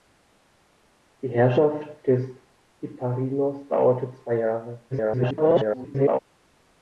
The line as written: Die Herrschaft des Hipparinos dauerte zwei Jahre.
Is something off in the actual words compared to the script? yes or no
yes